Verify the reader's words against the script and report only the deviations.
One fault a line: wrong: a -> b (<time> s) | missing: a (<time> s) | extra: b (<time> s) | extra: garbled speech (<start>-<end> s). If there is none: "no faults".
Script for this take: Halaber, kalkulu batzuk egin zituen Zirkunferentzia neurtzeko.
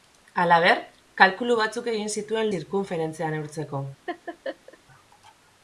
no faults